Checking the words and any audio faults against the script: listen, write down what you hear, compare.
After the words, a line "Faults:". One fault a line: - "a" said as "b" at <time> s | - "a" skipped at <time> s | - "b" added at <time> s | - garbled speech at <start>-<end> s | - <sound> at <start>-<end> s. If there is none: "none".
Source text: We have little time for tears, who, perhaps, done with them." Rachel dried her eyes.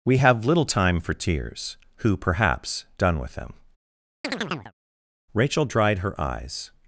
We have little time for tears, who, perhaps, done with them." Rachel dried her eyes.
Faults:
- chirp at 4.2-4.7 s